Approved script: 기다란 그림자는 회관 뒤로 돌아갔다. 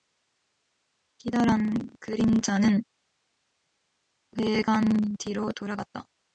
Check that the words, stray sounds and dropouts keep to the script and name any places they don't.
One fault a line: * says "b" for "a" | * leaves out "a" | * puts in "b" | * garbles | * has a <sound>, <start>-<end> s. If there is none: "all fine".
all fine